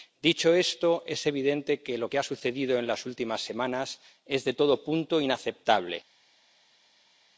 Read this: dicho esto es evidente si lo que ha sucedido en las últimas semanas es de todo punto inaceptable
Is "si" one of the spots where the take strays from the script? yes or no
yes